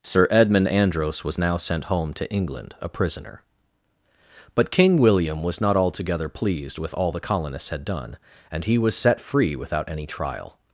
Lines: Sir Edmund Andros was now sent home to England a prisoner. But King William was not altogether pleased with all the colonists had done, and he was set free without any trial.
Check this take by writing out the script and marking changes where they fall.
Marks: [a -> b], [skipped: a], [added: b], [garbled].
Sir Edmund Andros was now sent home to England a prisoner. But King William was not altogether pleased with all the colonists had done, and he was set free without any trial.